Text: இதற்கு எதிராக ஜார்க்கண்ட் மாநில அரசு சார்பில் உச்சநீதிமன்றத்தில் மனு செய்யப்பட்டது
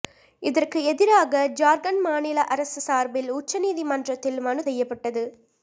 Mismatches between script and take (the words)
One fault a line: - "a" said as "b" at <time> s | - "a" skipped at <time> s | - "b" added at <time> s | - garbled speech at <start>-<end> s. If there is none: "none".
none